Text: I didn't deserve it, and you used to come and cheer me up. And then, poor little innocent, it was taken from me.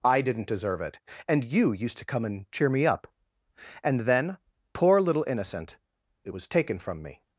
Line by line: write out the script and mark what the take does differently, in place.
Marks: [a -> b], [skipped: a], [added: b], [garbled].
I didn't deserve it, and you used to come and cheer me up. And then, poor little innocent, it was taken from me.